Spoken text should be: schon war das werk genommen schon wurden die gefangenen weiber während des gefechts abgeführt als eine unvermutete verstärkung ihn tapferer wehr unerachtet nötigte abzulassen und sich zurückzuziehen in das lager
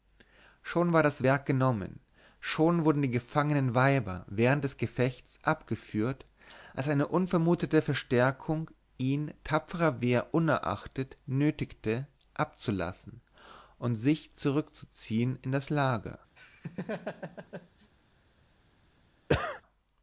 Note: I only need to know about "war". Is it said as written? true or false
true